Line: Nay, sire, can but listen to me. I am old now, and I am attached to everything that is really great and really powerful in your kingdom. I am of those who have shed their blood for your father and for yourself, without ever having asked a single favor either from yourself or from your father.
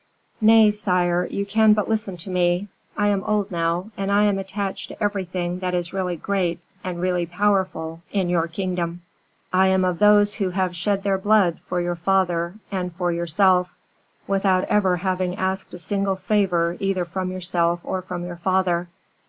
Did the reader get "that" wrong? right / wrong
right